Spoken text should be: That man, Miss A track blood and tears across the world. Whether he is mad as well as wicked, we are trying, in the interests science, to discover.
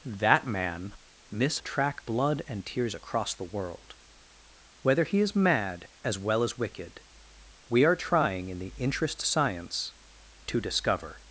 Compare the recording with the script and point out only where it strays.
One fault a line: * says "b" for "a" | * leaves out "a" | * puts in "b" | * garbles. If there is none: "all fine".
all fine